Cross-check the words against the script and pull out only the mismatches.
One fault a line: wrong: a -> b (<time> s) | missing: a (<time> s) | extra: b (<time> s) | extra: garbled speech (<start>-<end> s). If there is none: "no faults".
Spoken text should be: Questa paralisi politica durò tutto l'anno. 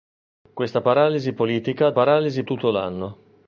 wrong: durò -> paralisi (1.9 s)